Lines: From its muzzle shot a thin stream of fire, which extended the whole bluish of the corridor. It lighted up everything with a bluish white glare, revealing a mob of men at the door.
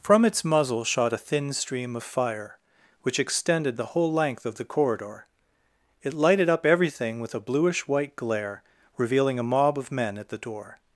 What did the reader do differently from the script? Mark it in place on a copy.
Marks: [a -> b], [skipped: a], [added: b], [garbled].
From its muzzle shot a thin stream of fire, which extended the whole [bluish -> length] of the corridor. It lighted up everything with a bluish white glare, revealing a mob of men at the door.